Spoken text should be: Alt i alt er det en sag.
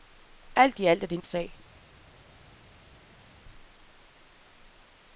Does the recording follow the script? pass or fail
pass